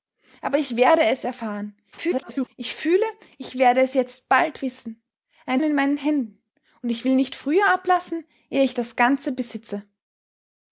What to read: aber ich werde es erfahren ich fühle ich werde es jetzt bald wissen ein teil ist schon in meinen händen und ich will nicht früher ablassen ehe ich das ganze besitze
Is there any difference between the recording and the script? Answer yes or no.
yes